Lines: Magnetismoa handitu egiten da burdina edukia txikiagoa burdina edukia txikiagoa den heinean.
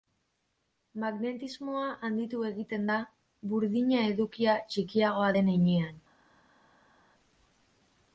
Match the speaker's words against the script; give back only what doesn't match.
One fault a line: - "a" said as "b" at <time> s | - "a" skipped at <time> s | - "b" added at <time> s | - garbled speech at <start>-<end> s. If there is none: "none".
- "burdina edukia txikiagoa" skipped at 5.3 s